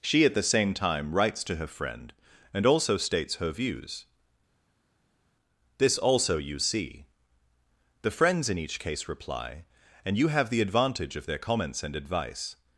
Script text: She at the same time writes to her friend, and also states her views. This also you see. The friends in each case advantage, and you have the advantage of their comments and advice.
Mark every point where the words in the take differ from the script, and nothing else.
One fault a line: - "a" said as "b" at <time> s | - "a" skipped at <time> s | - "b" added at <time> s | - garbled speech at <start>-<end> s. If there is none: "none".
- "advantage" said as "reply" at 9.1 s